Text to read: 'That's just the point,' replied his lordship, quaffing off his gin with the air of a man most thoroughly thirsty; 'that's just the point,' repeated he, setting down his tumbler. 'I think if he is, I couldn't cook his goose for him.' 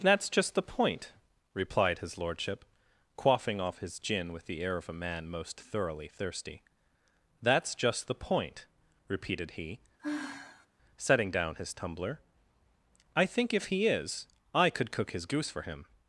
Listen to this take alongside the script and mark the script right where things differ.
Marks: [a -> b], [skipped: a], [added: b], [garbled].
'That's just the point,' replied his lordship, quaffing off his gin with the air of a man most thoroughly thirsty; 'that's just the point,' repeated he, setting down his tumbler. 'I think if he is, I [couldn't -> could] cook his goose for him.'